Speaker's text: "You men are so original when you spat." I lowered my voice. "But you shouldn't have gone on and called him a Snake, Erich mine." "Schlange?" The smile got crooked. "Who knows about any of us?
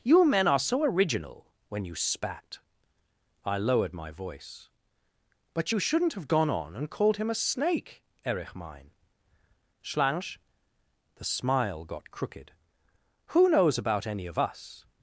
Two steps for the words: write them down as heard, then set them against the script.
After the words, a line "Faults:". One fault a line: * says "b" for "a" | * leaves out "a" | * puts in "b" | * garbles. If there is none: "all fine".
"You men are so original when you spat." I lowered my voice. "But you shouldn't have gone on and called him a Snake, Erich mine." "Schlange?" The smile got crooked. "Who knows about any of us?
Faults:
all fine